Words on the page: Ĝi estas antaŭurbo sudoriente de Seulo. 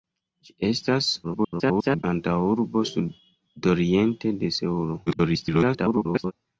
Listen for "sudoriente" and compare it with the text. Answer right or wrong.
right